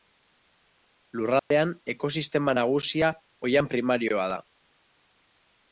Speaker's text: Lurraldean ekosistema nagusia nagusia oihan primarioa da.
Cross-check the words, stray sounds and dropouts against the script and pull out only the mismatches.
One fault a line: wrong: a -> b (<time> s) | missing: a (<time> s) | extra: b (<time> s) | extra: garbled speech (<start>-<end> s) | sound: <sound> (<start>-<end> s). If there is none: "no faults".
sound: dropout (1.4-1.5 s)
missing: nagusia (3.1 s)